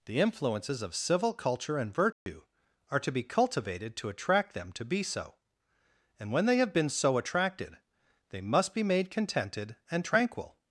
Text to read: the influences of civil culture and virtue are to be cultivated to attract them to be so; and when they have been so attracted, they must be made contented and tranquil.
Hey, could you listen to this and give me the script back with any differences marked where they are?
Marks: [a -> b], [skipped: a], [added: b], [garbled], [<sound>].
the influences of civil culture and virtue [dropout] are to be cultivated to attract them to be so; and when they have been so attracted, they must be made contented and tranquil.